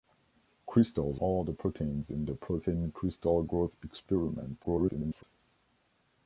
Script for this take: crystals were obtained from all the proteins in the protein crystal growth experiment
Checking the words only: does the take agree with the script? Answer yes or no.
no